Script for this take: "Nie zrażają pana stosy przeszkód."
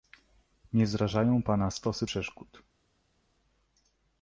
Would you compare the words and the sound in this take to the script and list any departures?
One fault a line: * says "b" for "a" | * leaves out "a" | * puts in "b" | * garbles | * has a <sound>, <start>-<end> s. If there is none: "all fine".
all fine